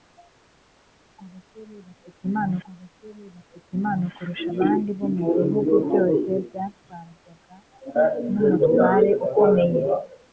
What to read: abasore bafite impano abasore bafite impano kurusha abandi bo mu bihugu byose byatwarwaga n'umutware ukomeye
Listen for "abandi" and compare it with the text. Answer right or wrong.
right